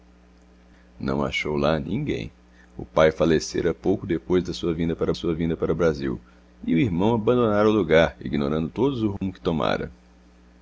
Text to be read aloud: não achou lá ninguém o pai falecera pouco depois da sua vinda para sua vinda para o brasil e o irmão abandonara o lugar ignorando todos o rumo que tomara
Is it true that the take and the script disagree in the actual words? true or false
false